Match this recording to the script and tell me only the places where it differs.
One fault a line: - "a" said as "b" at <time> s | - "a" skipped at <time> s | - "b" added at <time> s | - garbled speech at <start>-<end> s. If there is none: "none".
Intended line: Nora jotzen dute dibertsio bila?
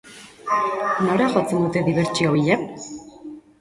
none